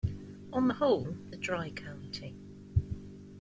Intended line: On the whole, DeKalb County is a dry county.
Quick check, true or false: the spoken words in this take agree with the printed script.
false